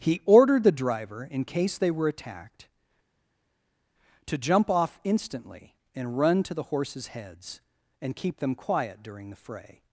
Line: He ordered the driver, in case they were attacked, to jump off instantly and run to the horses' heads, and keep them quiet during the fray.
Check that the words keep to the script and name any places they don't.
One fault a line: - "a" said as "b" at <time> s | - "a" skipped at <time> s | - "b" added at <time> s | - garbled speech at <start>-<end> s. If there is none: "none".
none